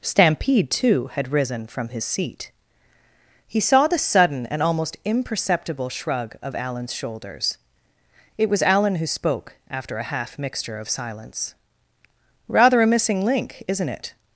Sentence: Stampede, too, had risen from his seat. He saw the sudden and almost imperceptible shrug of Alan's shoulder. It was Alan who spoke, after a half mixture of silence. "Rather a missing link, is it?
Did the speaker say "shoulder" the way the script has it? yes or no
no